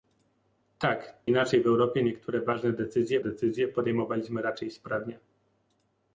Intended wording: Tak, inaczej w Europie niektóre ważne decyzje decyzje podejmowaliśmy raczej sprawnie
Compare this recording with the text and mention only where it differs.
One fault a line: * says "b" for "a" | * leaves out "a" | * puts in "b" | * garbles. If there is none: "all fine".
all fine